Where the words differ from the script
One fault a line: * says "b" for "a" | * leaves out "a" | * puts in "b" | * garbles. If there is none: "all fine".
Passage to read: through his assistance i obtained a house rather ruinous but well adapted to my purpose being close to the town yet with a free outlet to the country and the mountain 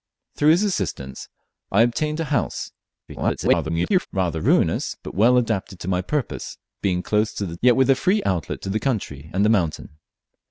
* garbles
* leaves out "town"